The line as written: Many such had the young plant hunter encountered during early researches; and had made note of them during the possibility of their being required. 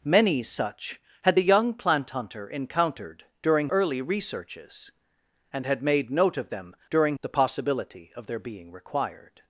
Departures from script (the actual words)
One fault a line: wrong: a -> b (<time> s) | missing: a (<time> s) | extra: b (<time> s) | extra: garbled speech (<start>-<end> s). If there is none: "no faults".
no faults